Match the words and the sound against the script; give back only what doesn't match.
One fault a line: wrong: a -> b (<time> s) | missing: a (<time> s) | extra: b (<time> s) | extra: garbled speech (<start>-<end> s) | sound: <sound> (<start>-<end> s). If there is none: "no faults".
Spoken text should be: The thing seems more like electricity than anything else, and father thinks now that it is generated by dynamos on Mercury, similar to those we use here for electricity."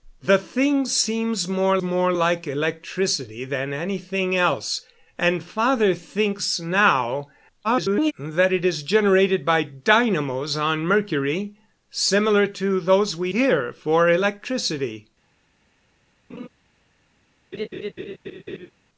extra: more (1.8 s)
extra: garbled speech (7.6-8.1 s)
missing: use (13.3 s)
sound: laugh (16.3-16.5 s)
sound: laugh (17.5-18.7 s)